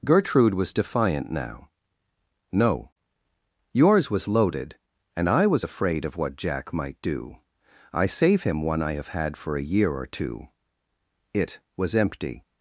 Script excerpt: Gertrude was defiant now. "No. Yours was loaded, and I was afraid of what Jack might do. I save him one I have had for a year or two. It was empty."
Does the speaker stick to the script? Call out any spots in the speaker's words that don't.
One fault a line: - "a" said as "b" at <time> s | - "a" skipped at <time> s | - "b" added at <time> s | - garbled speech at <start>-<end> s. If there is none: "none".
none